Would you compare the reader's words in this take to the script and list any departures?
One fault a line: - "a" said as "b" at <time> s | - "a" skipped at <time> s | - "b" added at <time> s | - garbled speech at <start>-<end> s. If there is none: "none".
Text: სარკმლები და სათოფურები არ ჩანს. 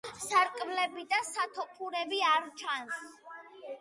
none